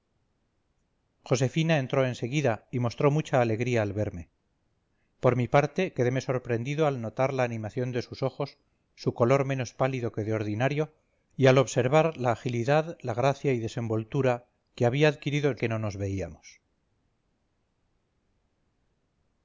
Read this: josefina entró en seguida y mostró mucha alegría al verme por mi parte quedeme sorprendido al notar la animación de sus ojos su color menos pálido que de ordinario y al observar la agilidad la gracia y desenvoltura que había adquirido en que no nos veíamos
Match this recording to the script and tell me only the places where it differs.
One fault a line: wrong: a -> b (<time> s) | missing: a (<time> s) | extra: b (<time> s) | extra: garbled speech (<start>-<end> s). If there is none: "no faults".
no faults